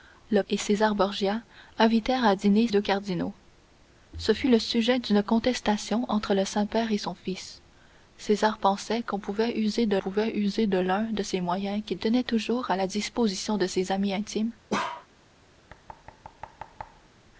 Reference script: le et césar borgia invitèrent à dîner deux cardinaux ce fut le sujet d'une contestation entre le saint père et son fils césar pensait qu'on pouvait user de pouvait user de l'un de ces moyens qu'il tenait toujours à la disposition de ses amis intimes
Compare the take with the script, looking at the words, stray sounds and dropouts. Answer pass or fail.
fail